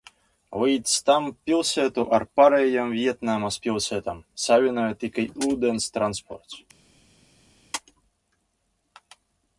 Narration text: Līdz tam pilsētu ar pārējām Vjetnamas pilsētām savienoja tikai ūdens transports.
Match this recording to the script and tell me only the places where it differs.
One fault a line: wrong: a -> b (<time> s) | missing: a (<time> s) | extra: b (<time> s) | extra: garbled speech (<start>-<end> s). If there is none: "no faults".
no faults